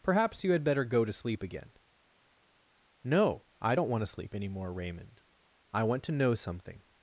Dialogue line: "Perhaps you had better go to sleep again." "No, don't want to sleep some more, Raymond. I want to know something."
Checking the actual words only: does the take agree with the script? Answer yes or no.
no